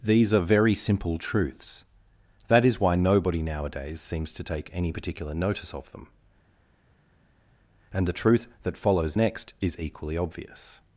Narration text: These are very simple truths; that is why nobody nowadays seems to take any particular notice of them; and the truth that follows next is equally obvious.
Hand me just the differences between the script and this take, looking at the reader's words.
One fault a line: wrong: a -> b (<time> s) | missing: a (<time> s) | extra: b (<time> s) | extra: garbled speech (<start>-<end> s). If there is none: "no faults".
no faults